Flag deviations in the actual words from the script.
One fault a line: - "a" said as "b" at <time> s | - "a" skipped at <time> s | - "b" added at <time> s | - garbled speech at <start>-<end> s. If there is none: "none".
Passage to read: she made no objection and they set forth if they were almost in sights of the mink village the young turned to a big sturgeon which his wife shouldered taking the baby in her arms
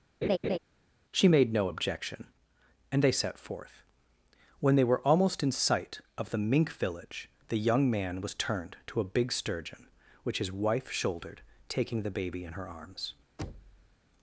- "if" said as "when" at 4.6 s
- "sights" said as "sight" at 5.5 s
- "man was" added at 7.9 s